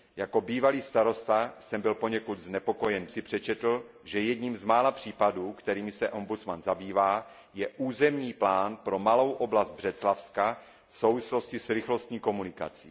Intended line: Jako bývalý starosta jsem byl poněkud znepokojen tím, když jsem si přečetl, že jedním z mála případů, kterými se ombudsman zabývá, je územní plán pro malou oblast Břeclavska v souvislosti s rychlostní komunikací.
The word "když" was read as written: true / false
false